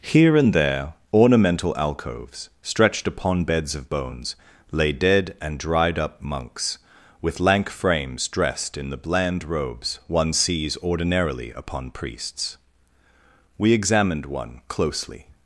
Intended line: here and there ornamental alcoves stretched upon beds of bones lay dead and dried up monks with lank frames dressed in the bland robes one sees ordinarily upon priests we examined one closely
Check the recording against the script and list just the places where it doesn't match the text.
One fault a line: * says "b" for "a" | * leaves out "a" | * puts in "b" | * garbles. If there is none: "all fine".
all fine